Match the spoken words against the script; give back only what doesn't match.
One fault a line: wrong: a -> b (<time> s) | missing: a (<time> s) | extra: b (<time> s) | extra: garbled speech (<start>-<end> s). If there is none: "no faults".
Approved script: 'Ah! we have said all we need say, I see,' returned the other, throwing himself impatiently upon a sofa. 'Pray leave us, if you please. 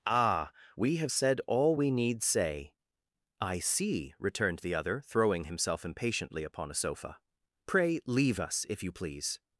no faults